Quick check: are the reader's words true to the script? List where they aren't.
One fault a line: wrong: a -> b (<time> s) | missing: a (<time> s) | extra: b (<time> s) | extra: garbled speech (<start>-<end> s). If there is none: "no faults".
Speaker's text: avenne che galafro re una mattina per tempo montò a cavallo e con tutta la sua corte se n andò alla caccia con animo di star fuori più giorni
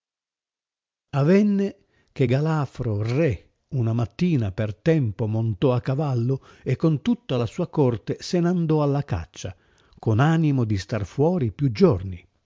no faults